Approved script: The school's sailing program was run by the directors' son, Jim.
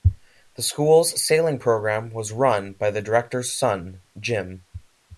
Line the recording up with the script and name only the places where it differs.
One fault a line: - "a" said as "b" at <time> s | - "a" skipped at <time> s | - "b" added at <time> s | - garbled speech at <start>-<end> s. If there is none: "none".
none